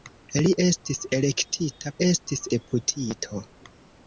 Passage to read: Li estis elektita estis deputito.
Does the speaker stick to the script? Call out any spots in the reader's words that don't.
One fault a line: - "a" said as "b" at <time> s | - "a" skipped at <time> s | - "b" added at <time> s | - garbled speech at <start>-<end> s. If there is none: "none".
none